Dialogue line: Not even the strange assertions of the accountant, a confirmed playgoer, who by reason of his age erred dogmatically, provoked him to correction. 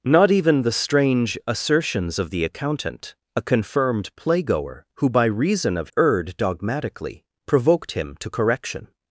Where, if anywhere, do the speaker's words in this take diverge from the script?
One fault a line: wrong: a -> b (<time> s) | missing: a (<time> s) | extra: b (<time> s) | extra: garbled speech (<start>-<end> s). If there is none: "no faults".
missing: his age (5.9 s)